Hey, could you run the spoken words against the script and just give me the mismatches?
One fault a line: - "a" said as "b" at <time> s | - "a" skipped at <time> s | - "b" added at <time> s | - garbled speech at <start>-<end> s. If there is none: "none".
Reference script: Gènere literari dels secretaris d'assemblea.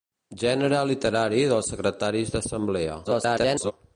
- garbled speech at 3.0-3.7 s